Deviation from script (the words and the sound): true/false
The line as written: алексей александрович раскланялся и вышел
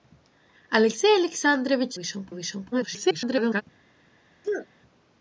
true